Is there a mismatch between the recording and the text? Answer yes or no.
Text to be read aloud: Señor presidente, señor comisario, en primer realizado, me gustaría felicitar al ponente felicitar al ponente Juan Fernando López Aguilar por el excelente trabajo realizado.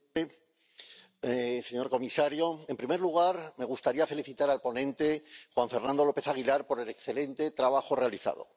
yes